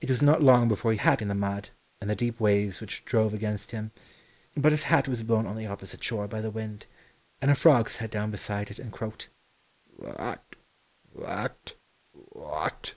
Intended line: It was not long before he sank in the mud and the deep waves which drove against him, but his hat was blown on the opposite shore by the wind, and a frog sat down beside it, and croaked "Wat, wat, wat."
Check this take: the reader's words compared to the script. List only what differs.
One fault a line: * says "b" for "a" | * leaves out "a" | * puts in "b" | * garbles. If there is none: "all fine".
* says "hat" for "sank"